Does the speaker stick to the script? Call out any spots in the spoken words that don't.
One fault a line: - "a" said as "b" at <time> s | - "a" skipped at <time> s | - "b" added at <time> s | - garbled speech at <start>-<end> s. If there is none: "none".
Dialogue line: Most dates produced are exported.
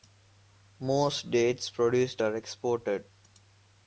none